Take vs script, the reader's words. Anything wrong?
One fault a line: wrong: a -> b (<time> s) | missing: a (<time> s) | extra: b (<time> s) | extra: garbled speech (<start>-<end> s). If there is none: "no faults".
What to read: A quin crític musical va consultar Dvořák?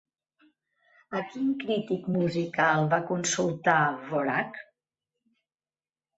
no faults